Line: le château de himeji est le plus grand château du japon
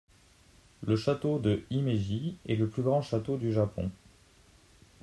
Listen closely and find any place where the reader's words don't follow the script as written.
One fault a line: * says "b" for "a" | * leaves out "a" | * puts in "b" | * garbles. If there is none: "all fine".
all fine